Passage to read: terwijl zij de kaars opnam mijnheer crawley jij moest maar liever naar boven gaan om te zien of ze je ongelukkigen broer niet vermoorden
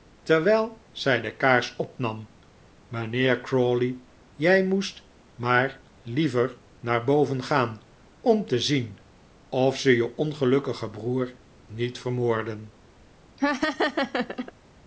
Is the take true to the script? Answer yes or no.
yes